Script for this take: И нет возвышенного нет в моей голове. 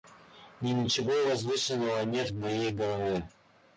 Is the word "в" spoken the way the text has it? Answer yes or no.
yes